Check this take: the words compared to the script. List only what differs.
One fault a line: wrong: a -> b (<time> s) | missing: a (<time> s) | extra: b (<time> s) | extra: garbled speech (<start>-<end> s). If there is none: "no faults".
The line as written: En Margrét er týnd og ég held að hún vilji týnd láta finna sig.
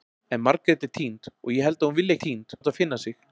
no faults